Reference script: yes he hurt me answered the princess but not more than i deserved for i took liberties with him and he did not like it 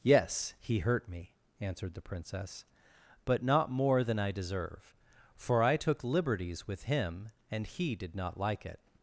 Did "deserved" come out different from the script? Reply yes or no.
yes